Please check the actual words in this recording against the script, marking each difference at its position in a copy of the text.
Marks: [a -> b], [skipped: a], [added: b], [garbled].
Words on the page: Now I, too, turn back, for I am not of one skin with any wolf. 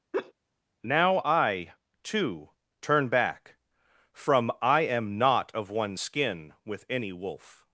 Now I, too, turn back, [for -> from] I am not of one skin with any wolf.